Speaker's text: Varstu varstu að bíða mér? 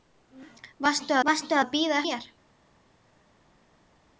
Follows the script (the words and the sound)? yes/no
yes